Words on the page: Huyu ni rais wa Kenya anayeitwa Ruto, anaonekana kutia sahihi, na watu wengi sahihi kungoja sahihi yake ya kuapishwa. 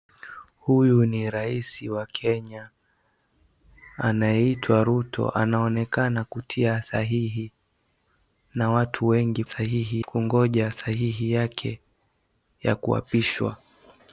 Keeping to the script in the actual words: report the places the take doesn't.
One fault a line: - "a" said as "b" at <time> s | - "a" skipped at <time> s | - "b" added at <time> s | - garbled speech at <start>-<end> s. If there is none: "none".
none